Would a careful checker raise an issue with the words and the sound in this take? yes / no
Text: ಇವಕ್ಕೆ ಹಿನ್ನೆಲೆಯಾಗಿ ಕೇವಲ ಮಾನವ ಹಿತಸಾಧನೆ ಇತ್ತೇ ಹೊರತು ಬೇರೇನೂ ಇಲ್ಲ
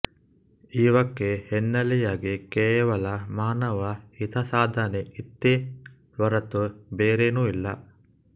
no